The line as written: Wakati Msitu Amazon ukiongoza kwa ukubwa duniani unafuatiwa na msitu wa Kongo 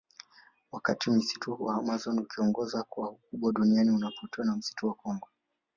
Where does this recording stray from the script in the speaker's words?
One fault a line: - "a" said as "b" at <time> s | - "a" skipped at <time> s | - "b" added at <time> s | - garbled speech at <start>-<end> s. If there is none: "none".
- "wa" added at 1.6 s